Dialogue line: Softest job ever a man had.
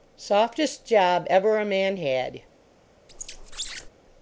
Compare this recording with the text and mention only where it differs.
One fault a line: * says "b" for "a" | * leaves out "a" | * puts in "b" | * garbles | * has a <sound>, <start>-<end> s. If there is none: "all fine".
* has a squeak, 3.1-3.9 s